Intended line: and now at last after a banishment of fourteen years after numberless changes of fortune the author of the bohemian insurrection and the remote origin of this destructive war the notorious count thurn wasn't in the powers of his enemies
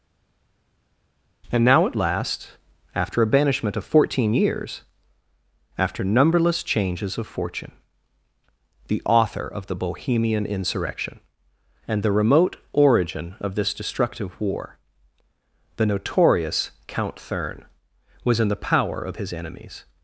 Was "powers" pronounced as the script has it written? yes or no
no